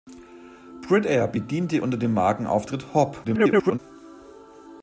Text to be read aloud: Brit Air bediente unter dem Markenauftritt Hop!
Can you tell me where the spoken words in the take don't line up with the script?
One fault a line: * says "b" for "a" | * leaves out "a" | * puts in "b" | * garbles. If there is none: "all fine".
* garbles